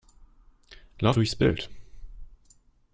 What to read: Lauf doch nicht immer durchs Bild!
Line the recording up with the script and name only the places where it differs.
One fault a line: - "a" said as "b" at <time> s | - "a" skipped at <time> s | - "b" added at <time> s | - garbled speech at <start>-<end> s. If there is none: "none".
- "doch nicht immer" skipped at 1.2 s